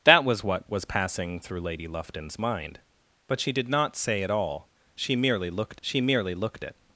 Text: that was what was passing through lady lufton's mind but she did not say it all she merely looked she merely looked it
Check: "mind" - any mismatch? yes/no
no